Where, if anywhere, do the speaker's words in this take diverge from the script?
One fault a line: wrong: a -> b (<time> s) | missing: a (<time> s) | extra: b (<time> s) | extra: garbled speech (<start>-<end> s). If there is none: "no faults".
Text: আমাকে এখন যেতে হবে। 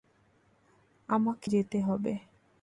missing: এখন (1.5 s)